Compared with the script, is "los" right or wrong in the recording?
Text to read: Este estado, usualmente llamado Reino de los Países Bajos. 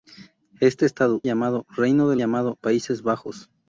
wrong